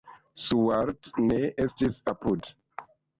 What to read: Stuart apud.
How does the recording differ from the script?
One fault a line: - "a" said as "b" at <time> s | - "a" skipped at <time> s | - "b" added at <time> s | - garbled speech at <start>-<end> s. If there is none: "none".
- "ne estis" added at 1.3 s